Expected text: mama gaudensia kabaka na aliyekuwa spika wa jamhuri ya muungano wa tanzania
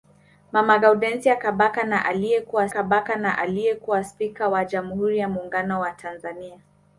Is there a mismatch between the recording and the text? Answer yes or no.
yes